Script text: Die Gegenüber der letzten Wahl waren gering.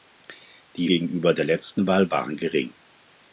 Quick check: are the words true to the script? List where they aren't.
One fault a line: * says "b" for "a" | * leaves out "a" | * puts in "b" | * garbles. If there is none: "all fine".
all fine